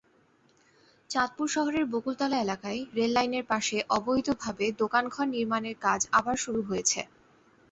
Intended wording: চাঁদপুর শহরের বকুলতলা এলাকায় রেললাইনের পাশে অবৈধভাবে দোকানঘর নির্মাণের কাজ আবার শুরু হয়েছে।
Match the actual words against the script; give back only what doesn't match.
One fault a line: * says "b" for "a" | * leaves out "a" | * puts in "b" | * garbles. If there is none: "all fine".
all fine